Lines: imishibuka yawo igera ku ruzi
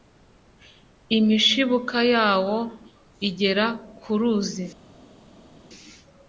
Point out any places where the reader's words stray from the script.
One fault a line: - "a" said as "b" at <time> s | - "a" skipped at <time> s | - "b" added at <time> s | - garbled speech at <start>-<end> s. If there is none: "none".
none